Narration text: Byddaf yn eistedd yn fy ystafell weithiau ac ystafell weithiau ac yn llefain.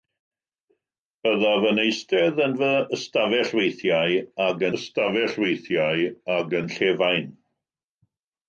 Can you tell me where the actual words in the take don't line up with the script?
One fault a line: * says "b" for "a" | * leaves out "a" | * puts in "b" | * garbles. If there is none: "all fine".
all fine